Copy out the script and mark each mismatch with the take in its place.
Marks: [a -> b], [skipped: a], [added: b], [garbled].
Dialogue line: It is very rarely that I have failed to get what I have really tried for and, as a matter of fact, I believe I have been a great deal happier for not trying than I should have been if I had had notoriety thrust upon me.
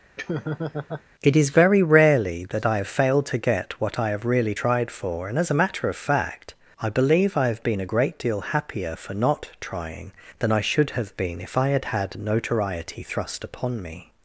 It is very rarely that I have failed to get what I have really tried for and, as a matter of fact, I believe I have been a great deal happier for not trying than I should have been if I had had notoriety thrust upon me.